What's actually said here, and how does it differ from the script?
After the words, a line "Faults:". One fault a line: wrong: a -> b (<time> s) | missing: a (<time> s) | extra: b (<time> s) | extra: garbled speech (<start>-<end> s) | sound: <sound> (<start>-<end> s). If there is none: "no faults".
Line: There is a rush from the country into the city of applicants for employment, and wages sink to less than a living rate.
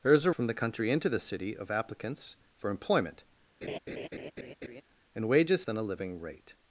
There is a from the country into the city of applicants for employment, and wages than a living rate.
Faults:
missing: rush (0.3 s)
sound: laugh (3.6-4.8 s)
missing: sink to less (5.7 s)